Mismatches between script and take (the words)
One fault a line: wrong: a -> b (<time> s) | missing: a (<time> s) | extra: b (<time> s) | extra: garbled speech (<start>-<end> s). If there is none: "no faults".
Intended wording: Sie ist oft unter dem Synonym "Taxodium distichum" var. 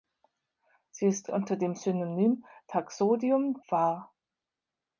missing: oft (1.3 s)
missing: distichum (3.6 s)